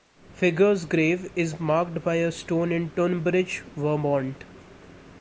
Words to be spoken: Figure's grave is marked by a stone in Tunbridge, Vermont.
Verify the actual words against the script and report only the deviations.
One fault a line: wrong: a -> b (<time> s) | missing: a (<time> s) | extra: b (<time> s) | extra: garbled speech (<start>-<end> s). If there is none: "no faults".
no faults